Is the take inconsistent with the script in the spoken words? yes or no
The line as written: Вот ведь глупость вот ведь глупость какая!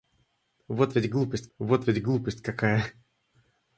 no